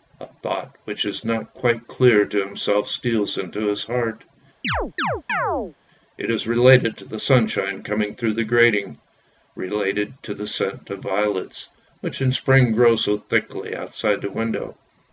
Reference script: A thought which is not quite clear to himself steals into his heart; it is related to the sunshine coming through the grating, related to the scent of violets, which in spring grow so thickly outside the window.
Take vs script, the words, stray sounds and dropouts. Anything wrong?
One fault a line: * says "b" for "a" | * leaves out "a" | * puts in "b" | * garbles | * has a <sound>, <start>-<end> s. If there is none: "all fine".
* has a chirp, 4.6-5.8 s